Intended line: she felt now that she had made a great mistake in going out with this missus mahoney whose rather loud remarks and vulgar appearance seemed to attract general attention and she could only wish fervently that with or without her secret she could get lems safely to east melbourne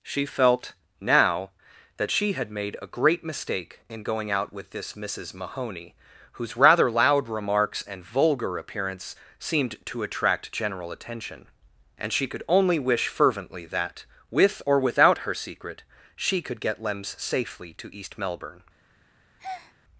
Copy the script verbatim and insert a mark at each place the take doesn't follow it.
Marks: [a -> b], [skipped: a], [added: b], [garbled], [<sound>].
she felt now that she had made a great mistake in going out with this missus mahoney whose rather loud remarks and vulgar appearance seemed to attract general attention and she could only wish fervently that with or without her secret she could get lems safely to east melbourne [breath]